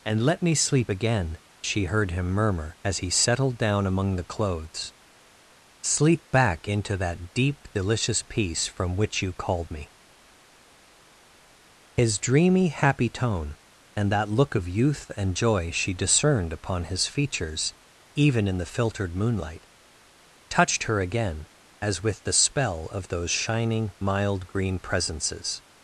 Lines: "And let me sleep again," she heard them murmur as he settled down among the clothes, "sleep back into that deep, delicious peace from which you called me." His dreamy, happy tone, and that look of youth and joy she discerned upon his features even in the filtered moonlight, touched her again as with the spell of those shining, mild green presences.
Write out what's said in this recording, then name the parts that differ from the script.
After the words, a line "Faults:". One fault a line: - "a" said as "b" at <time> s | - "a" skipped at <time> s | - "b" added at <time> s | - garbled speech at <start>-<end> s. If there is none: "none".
"And let me sleep again," she heard him murmur as he settled down among the clothes, "sleep back into that deep, delicious peace from which you called me." His dreamy, happy tone, and that look of youth and joy she discerned upon his features even in the filtered moonlight, touched her again as with the spell of those shining, mild green presences.
Faults:
- "them" said as "him" at 2.1 s